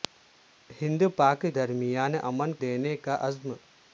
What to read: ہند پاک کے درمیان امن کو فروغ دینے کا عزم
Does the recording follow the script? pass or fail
fail